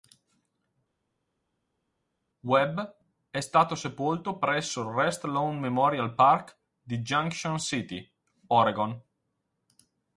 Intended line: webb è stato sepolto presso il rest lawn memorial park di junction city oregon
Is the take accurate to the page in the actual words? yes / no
yes